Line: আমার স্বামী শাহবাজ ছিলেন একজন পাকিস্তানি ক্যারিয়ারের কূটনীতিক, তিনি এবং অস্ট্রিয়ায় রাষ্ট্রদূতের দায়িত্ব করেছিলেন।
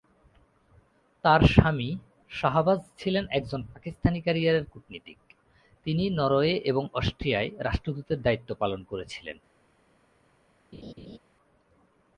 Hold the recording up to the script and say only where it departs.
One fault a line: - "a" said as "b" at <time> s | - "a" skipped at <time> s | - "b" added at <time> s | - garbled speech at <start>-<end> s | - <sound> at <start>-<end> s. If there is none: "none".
- "আমার" said as "তার" at 1.2 s
- "নরওয়ে" added at 6.1 s
- "পালন" added at 8.5 s
- laugh at 10.7-11.2 s